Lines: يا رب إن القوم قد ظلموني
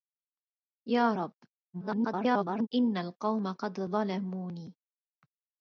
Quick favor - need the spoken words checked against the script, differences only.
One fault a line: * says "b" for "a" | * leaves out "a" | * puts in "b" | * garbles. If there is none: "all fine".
* garbles